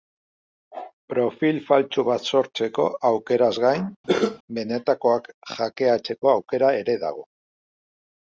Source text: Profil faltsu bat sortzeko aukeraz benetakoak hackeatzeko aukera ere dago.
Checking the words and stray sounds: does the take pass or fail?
fail